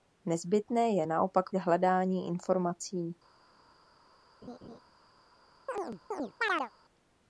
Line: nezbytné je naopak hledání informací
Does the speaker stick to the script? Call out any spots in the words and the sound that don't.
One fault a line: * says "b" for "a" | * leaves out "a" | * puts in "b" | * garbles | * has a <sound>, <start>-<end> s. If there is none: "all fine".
* has a laugh, 4.4-4.8 s
* has a chirp, 5.7-6.7 s